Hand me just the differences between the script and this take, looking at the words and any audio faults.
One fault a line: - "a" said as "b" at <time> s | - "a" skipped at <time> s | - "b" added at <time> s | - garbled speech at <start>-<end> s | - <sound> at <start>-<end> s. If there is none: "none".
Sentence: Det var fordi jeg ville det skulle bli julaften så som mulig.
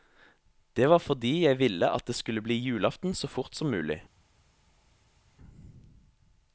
- "at" added at 1.9 s
- "fort" added at 3.3 s